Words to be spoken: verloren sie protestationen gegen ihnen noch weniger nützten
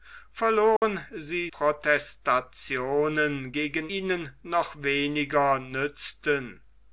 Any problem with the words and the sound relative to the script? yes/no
yes